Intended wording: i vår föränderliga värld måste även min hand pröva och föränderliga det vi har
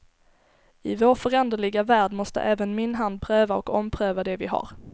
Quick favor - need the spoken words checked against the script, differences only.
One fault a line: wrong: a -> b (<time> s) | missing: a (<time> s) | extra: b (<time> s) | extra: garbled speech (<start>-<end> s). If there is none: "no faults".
wrong: föränderliga -> ompröva (3.7 s)